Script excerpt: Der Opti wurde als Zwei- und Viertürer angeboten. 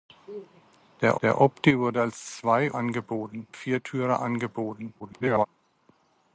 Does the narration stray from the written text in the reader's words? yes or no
yes